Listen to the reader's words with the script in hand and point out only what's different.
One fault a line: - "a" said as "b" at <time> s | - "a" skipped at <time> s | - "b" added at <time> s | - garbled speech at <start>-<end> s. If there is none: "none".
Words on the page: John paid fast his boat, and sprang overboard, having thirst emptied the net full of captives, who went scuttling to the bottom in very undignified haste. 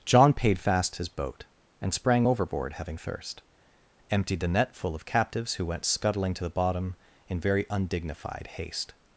none